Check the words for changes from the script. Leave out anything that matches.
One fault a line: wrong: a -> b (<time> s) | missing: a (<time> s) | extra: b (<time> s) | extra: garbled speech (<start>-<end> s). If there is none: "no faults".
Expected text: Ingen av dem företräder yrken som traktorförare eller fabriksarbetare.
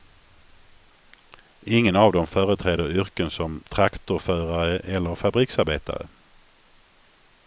no faults